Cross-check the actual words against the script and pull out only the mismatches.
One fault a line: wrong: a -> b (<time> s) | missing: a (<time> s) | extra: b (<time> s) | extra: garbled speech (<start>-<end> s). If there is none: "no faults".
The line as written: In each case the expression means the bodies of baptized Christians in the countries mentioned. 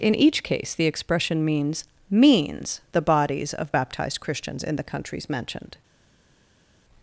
extra: means (2.1 s)